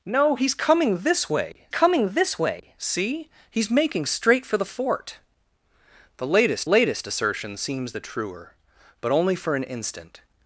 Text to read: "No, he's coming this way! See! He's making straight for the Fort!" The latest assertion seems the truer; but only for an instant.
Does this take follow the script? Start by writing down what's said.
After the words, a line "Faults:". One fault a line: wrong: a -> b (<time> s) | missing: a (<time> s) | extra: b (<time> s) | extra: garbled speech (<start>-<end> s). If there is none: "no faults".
"No, he's coming this way coming this way! See! He's making straight for the Fort!" The latest latest assertion seems the truer; but only for an instant.
Faults:
extra: coming this way (1.7 s)
extra: latest (6.7 s)